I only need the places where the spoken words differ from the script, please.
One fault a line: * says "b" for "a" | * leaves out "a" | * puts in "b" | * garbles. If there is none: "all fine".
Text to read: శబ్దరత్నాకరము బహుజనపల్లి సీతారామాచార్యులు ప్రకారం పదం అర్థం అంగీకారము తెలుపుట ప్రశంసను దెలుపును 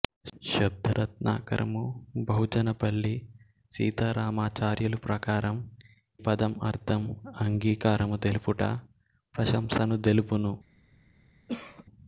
all fine